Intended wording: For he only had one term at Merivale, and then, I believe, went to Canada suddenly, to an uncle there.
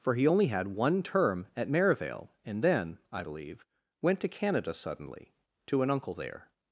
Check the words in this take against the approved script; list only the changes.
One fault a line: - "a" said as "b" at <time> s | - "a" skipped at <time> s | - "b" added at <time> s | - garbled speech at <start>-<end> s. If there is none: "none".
none